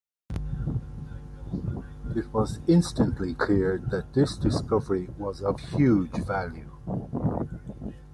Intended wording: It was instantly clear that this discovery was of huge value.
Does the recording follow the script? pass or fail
pass